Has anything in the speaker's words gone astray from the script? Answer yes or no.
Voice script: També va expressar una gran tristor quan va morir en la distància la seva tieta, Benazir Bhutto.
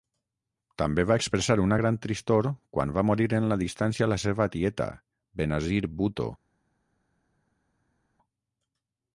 no